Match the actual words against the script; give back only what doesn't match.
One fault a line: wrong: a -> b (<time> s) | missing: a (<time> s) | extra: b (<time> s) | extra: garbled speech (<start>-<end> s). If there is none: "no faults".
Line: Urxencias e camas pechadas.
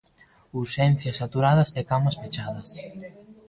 extra: saturadas (1.2 s)